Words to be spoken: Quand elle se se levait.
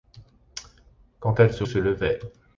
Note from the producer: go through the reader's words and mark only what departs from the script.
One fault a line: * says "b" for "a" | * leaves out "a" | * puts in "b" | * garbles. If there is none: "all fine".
all fine